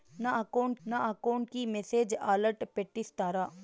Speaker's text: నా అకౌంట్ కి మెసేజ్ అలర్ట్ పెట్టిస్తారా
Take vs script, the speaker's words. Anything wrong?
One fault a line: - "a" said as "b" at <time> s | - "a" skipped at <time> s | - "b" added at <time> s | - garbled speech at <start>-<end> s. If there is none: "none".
- "నా అకౌంట్" added at 0.9 s